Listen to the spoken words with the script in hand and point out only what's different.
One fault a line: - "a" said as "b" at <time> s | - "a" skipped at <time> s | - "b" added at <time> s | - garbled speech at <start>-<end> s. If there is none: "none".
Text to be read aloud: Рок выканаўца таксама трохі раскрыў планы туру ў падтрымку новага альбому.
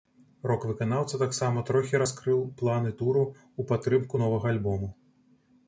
none